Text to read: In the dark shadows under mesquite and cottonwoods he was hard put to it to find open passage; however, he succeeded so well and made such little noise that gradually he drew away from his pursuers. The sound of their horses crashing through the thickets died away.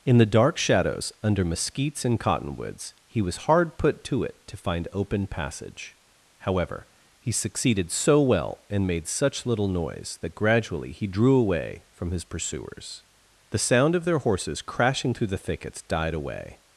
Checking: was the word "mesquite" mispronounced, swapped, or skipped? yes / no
yes